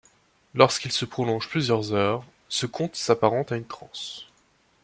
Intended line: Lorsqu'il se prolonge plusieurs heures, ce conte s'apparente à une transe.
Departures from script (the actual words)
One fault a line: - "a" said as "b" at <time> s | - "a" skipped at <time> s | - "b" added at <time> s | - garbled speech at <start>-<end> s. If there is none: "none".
none